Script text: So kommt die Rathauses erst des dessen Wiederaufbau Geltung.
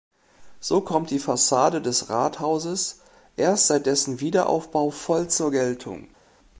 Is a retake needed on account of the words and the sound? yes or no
yes